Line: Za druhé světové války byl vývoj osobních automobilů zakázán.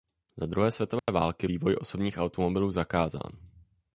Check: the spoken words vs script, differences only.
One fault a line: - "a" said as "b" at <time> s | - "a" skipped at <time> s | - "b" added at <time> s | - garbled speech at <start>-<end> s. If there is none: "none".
- "byl" skipped at 1.5 s